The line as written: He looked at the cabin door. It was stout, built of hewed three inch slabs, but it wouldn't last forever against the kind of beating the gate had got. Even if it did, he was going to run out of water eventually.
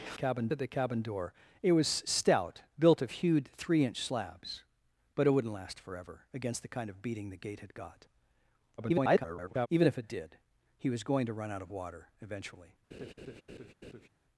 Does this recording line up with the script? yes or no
no